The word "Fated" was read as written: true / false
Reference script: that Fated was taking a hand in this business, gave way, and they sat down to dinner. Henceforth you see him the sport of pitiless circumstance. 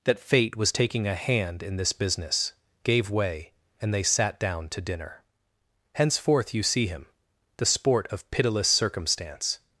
false